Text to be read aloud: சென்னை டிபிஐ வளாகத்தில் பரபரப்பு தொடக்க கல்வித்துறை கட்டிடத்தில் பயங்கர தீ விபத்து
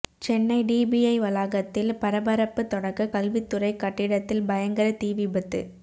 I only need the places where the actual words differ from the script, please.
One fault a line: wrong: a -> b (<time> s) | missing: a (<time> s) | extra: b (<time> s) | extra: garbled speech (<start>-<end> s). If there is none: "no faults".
no faults